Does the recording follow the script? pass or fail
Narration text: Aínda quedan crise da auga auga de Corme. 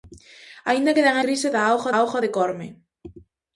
pass